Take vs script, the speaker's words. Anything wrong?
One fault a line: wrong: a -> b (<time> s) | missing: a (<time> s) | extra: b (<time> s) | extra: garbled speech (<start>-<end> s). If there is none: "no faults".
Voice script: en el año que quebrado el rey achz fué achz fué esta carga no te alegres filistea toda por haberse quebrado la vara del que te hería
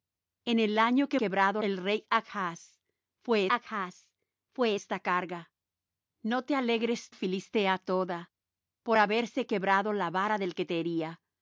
no faults